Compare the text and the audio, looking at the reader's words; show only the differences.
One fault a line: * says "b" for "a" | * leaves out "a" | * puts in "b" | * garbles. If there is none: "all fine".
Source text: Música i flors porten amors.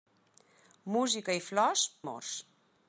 * leaves out "porten"